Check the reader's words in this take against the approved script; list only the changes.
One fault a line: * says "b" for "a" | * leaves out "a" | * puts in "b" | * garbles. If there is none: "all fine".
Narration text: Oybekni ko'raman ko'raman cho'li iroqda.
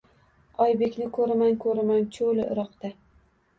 all fine